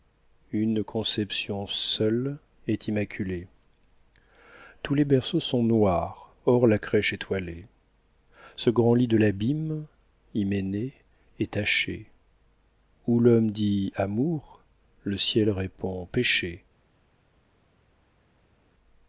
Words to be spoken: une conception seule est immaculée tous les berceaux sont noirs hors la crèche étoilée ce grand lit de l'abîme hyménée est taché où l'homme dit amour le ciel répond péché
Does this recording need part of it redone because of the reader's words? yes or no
no